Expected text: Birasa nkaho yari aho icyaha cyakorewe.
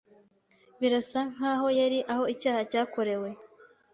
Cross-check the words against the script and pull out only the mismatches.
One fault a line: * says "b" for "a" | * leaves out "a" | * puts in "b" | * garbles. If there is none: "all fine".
all fine